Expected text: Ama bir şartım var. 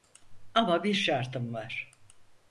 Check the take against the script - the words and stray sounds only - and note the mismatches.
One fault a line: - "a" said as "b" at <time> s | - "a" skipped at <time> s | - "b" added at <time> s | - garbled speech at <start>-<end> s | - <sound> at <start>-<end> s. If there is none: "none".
none